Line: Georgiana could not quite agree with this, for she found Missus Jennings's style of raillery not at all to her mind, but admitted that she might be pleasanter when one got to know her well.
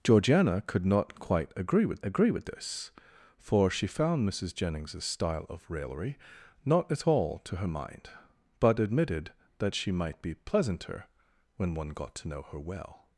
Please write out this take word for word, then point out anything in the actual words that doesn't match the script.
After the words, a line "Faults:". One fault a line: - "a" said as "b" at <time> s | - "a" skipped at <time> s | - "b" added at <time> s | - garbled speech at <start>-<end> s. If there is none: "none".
Georgiana could not quite agree with agree with this, for she found Missus Jennings's style of raillery not at all to her mind, but admitted that she might be pleasanter when one got to know her well.
Faults:
- "agree with" added at 2.0 s